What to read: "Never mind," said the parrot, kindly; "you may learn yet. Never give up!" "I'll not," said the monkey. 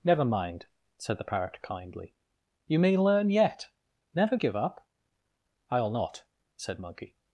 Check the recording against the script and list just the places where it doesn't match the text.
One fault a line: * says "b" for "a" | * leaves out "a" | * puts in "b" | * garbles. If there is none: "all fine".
* leaves out "the"